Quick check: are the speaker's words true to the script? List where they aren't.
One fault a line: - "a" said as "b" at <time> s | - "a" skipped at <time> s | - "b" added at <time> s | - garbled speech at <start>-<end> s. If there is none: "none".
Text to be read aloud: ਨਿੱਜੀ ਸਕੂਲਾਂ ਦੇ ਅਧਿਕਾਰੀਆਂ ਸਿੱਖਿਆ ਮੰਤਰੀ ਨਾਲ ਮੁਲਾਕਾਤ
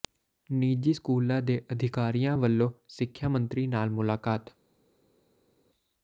- "ਵੱਲੋਂ" added at 2.4 s